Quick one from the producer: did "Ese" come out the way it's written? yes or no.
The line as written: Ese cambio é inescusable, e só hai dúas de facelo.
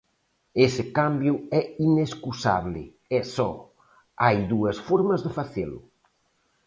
yes